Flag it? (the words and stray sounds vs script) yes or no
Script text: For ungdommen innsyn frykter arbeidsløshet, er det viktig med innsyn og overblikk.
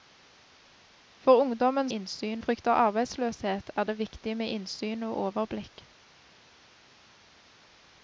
no